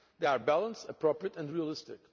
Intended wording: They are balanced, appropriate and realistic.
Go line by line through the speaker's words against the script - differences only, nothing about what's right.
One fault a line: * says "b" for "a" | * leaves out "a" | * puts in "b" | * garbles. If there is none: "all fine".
all fine